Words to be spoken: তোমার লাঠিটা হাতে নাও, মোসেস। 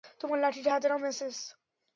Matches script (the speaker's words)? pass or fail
pass